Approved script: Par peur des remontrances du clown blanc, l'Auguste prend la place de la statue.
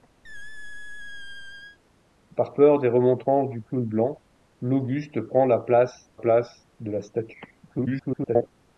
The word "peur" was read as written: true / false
true